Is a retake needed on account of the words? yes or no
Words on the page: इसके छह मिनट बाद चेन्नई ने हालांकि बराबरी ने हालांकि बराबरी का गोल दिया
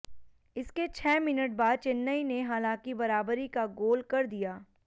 yes